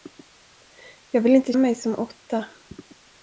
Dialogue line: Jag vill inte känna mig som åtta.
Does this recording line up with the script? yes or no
no